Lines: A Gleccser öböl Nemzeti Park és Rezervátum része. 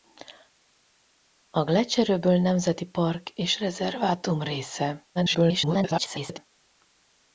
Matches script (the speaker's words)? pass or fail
fail